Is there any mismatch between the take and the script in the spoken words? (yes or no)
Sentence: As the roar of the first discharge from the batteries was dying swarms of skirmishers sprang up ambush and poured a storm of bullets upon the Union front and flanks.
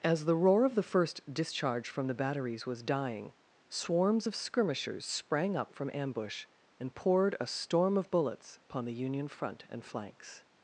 yes